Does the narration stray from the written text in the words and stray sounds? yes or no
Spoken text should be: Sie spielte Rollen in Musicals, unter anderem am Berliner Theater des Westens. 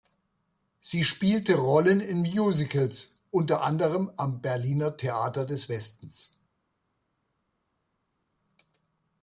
no